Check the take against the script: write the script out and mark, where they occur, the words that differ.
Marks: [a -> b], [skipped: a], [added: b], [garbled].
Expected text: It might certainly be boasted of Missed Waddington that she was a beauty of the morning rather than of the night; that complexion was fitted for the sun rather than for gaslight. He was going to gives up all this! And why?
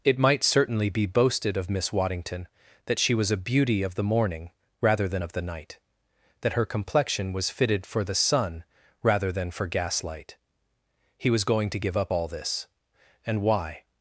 It might certainly be boasted of [Missed -> Miss] Waddington that she was a beauty of the morning rather than of the night; that [added: her] complexion was fitted for the sun rather than for gaslight. He was going to [gives -> give] up all this! And why?